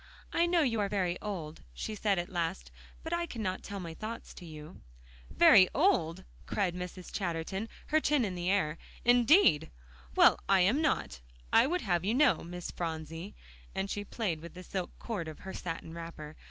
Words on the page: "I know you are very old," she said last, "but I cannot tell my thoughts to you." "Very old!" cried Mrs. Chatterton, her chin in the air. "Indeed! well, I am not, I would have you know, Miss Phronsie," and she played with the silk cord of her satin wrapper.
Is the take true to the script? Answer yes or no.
no